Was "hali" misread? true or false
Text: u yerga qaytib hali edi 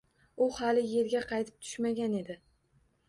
true